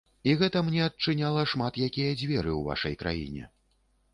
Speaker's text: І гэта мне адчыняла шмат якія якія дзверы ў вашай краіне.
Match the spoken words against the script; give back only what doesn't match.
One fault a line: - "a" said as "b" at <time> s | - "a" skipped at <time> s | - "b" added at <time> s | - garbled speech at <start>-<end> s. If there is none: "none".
- "якія" skipped at 2.2 s